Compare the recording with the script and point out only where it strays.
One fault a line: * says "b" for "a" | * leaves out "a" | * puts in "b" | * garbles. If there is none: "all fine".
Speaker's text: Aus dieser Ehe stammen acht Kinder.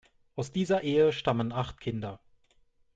all fine